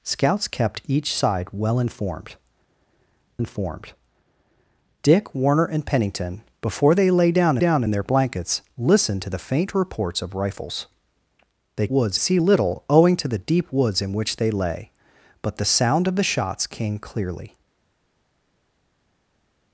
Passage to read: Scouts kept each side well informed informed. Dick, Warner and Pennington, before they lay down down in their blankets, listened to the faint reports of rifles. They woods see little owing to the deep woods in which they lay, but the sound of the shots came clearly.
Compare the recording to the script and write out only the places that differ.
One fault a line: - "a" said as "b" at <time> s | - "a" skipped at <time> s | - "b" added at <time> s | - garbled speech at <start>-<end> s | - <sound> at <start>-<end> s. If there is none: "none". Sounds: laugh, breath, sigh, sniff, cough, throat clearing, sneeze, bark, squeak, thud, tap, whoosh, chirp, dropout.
none